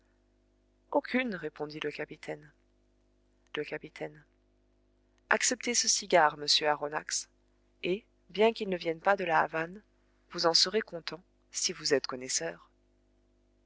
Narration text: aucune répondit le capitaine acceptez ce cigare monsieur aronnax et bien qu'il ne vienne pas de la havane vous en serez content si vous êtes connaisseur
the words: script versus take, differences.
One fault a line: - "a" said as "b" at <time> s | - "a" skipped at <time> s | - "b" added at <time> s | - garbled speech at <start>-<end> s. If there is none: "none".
- "le capitaine" added at 3.5 s